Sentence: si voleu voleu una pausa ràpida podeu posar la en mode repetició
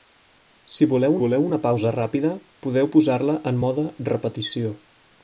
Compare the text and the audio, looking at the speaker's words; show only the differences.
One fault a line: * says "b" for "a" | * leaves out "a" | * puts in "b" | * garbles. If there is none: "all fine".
all fine